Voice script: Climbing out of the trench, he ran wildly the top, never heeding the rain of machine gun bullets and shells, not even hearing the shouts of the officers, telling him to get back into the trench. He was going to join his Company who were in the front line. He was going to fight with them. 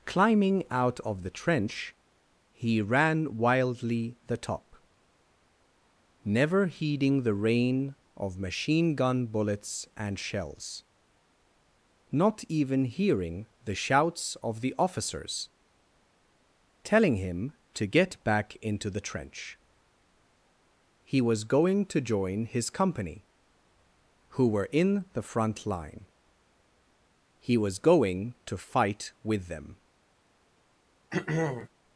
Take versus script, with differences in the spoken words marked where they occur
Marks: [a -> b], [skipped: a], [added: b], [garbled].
Climbing out of the trench, he ran wildly the top, never heeding the rain of machine gun bullets and shells, not even hearing the shouts of the officers, telling him to get back into the trench. He was going to join his Company who were in the front line. He was going to fight with them.